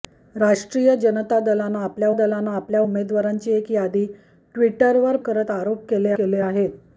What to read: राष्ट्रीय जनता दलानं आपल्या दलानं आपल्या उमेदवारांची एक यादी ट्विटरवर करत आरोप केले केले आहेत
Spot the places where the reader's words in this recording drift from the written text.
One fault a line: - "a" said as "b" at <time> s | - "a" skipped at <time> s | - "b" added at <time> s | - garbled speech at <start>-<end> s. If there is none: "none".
none